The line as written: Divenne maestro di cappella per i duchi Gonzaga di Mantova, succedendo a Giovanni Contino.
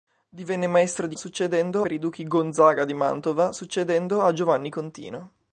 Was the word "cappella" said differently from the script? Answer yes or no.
yes